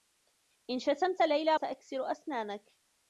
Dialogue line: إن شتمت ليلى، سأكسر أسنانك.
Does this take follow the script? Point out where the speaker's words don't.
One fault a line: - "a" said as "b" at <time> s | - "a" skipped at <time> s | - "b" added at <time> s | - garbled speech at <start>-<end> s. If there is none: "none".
none